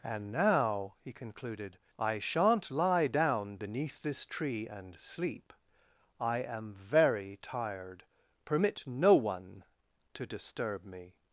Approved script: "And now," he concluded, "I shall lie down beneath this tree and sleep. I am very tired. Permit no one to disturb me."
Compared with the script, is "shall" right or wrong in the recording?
wrong